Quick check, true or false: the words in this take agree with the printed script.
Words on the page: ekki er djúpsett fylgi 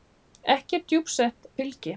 true